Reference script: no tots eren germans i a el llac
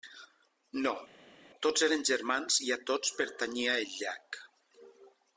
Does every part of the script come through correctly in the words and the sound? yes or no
no